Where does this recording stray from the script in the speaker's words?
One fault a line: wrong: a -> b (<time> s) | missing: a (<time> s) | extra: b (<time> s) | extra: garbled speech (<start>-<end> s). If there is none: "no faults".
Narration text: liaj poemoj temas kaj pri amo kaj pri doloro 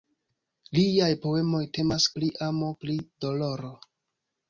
missing: kaj (2.1 s)
missing: kaj (2.7 s)